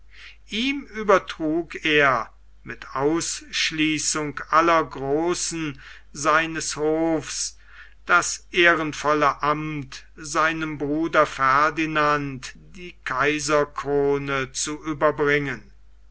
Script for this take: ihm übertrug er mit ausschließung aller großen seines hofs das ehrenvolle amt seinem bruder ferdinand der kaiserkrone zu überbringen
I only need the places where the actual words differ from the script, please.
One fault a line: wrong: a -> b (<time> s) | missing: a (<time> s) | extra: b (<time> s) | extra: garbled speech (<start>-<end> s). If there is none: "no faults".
wrong: der -> die (12.5 s)